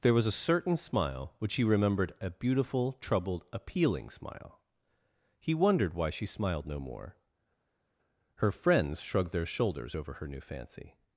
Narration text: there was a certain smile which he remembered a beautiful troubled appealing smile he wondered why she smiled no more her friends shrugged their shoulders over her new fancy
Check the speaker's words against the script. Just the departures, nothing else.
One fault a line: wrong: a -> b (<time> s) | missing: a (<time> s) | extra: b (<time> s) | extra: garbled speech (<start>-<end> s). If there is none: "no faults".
no faults